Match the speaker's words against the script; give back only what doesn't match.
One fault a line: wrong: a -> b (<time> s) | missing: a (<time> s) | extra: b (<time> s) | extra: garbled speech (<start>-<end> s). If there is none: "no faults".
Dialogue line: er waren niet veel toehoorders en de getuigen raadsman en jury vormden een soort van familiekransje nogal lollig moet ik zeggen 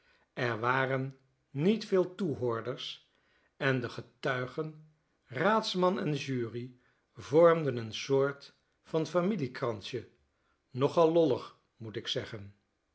no faults